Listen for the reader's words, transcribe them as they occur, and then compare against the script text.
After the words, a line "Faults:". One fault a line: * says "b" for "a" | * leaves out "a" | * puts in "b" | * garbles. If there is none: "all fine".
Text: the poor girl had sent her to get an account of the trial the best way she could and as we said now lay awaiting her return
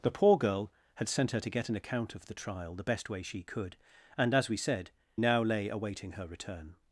the poor girl had sent her to get an account of the trial the best way she could and as we said now lay awaiting her return
Faults:
all fine